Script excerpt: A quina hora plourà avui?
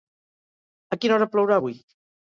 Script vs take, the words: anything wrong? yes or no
no